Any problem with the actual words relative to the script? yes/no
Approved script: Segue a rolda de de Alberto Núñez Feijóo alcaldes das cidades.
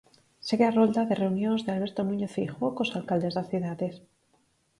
yes